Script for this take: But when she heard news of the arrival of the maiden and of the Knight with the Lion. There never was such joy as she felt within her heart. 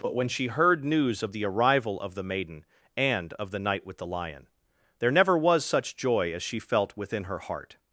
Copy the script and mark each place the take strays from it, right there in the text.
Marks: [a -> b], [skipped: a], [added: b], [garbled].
But when she heard news of the arrival of the maiden and of the Knight with the Lion. There never was such joy as she felt within her heart.